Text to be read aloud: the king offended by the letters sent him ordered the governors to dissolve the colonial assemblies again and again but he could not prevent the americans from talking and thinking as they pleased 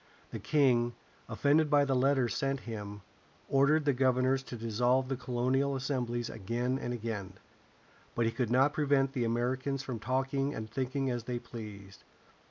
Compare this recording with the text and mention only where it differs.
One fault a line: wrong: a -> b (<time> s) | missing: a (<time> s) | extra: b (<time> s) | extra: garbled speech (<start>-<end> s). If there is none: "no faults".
no faults